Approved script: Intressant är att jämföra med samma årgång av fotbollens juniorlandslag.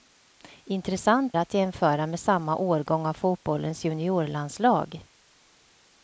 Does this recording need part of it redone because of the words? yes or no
yes